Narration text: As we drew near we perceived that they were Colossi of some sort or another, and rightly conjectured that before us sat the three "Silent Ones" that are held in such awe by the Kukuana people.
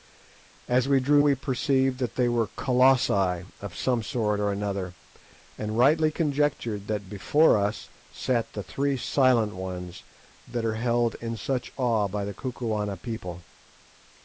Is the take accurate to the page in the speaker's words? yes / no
no